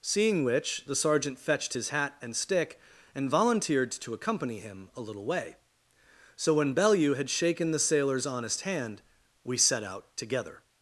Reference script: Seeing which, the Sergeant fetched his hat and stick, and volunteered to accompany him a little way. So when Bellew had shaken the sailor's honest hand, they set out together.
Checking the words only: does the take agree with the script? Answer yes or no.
no